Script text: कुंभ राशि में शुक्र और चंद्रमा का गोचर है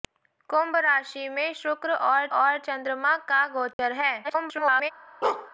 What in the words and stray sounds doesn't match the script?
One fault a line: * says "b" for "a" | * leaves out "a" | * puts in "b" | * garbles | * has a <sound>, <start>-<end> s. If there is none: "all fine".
* puts in "और"
* has a dropout, 3.7-3.8 s
* garbles
* has a bark, 5.2-5.5 s